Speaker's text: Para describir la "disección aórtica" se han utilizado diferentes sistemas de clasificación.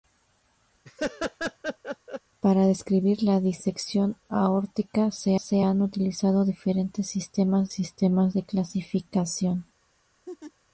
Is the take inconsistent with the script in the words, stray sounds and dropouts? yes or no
yes